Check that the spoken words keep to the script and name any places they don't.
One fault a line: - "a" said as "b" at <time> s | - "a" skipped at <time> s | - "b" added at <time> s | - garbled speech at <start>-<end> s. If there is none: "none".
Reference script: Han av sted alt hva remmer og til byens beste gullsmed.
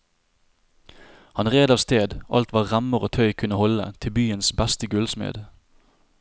- "red" added at 1.5 s
- "tøy kunne holde" added at 3.2 s